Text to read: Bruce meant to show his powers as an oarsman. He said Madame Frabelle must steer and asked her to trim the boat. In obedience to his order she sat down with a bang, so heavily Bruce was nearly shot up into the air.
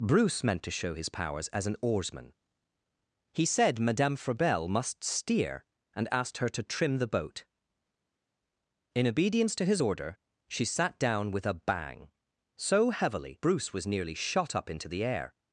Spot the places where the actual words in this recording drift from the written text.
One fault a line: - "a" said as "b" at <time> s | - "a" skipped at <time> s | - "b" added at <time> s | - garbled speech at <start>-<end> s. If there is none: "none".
none